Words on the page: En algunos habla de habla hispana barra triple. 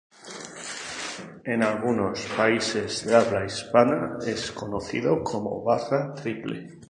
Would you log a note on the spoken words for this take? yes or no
yes